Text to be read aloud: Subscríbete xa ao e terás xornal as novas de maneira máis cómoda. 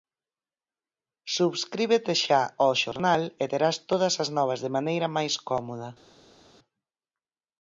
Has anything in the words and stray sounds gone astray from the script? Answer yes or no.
yes